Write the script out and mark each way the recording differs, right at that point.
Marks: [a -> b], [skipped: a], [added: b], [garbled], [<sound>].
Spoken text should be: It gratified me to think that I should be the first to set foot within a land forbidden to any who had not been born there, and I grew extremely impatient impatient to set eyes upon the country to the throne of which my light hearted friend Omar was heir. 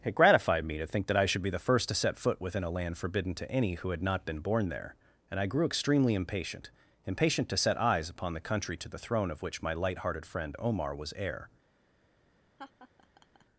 It gratified me to think that I should be the first to set foot within a land forbidden to any who had not been born there, and I grew extremely impatient impatient to set eyes upon the country to the throne of which my light hearted friend Omar was heir. [laugh]